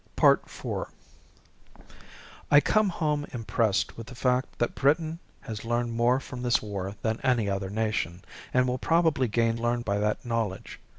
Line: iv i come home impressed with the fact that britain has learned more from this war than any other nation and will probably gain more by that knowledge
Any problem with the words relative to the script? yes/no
yes